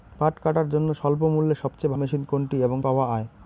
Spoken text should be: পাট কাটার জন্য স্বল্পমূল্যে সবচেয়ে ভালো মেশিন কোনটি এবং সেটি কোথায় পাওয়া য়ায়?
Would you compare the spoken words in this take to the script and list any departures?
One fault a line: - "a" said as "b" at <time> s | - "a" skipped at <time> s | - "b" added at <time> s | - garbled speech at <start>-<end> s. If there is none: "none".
- "ভালো" skipped at 1.9 s
- "সেটি কোথায়" skipped at 2.8 s